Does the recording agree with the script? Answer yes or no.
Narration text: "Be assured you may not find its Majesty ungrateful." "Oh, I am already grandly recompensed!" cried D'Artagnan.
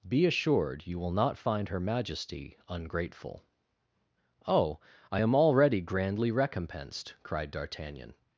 no